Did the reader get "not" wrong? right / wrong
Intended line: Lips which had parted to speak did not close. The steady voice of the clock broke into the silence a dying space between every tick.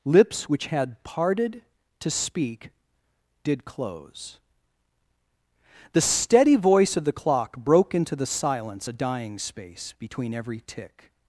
wrong